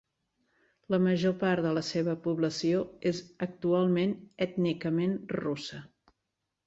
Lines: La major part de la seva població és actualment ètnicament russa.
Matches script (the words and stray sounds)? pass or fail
pass